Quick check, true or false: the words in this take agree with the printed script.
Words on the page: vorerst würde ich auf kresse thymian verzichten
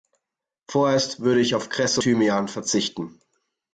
true